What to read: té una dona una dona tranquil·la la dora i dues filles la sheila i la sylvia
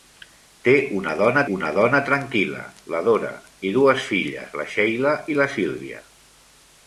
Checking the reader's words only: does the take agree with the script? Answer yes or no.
yes